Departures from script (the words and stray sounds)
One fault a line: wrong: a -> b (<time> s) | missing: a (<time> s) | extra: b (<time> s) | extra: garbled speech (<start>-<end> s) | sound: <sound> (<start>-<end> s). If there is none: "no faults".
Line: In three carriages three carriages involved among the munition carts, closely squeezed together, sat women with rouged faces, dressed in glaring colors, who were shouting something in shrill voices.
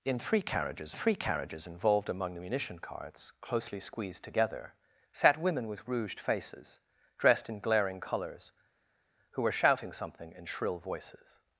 no faults